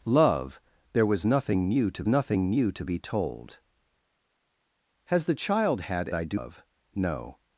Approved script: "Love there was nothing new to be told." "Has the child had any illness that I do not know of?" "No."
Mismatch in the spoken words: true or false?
true